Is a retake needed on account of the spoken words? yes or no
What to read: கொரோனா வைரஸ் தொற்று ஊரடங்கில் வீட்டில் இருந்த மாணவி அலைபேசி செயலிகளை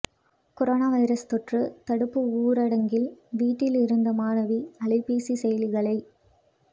yes